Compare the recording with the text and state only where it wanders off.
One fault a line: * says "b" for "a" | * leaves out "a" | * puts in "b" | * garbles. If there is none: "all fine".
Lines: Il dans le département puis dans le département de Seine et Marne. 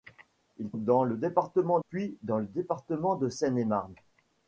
all fine